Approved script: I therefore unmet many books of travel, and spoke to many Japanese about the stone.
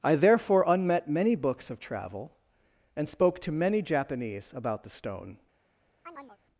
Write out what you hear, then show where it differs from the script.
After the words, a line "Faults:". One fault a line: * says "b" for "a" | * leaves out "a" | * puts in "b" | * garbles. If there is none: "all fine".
I therefore unmet many books of travel, and spoke to many Japanese about the stone.
Faults:
all fine